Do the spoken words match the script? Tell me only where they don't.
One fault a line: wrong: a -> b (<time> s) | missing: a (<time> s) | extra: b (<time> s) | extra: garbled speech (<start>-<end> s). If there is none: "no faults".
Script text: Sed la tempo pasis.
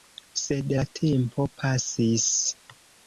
no faults